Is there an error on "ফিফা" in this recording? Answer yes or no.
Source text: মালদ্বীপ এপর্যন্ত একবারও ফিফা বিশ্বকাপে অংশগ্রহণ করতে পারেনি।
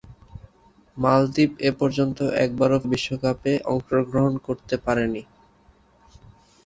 yes